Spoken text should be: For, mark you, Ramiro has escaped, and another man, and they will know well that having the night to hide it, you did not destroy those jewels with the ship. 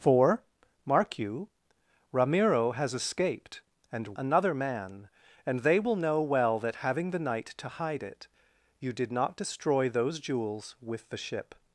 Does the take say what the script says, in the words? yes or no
yes